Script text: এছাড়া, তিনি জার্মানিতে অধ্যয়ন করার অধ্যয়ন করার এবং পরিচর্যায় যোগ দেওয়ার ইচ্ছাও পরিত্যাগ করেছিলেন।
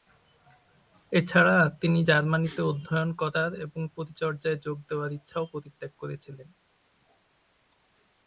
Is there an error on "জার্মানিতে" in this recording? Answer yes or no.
no